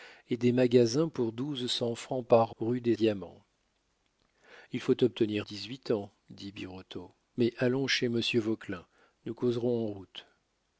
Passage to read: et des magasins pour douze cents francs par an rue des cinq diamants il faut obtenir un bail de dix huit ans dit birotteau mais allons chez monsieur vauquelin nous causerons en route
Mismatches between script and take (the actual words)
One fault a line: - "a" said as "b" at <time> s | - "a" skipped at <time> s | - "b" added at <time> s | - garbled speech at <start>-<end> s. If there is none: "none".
- "an" skipped at 2.5 s
- "cinq" skipped at 3.0 s
- "un bail de" skipped at 5.5 s